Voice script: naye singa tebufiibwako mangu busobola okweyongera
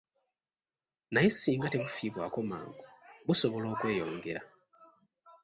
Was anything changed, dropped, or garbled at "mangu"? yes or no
no